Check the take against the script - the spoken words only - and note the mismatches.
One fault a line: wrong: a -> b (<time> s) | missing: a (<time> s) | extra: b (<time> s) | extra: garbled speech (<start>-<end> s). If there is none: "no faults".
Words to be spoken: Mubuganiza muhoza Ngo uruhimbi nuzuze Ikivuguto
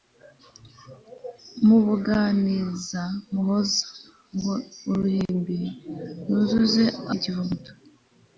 no faults